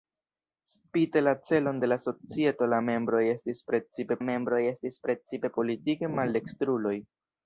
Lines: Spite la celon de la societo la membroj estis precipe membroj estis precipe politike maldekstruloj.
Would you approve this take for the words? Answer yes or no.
yes